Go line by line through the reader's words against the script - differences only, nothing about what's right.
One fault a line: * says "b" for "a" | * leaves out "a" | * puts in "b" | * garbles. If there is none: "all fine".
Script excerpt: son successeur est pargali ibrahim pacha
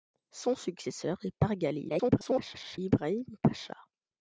* garbles